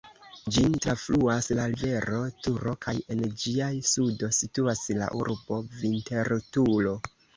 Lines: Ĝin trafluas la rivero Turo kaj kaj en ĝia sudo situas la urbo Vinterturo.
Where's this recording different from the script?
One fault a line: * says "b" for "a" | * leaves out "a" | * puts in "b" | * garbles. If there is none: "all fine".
* leaves out "kaj"